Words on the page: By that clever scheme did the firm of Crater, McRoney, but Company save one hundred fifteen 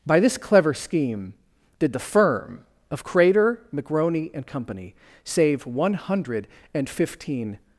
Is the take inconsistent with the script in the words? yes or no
yes